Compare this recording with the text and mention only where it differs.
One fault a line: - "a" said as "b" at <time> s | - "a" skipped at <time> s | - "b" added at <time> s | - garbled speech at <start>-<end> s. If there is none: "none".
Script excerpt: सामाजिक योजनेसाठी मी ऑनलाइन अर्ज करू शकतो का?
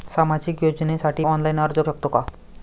- "मी" skipped at 1.2 s
- "करू" skipped at 1.8 s